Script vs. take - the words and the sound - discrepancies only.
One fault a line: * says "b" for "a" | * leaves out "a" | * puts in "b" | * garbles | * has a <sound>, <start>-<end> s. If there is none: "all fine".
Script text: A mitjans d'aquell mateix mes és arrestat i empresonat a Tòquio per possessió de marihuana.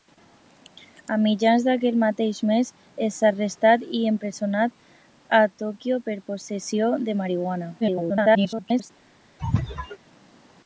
* garbles
* has a sneeze, 9.4-10.0 s